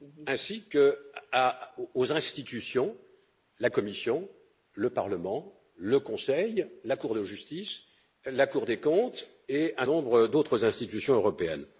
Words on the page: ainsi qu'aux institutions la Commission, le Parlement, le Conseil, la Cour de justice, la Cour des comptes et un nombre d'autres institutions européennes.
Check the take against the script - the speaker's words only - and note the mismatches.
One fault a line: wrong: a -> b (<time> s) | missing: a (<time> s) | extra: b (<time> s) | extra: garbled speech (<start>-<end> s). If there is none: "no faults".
no faults